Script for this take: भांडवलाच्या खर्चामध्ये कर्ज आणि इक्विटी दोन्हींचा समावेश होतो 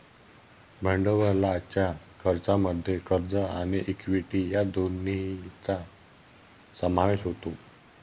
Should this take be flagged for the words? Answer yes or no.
yes